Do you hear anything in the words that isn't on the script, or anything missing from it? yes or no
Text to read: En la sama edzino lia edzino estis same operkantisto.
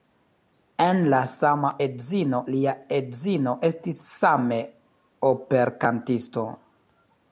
no